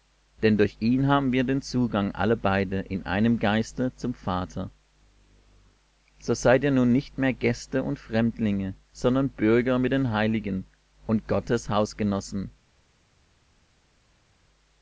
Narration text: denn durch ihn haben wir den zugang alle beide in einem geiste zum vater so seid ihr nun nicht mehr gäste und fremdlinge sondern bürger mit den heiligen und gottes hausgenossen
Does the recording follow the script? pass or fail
pass